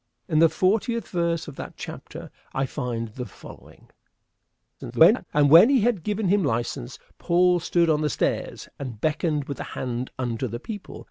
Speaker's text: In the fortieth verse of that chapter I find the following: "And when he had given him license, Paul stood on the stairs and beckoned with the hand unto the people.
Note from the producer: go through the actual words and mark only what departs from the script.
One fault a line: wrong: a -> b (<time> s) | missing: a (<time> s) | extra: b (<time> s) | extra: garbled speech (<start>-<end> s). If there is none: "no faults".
extra: garbled speech (4.8-5.3 s)